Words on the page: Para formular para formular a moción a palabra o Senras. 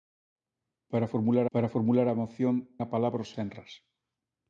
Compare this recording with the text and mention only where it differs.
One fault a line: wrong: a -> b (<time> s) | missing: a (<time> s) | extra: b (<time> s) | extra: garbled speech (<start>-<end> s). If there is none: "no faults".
no faults